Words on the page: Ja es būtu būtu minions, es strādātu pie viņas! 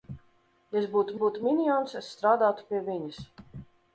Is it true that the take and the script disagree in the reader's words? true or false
false